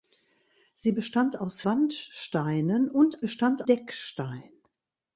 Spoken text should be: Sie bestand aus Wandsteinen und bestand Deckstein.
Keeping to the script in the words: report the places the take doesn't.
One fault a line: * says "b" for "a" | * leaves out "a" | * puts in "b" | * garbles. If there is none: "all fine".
all fine